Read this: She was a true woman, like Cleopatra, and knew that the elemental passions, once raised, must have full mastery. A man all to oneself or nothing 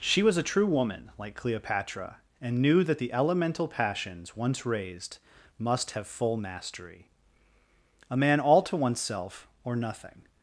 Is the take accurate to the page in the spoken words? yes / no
yes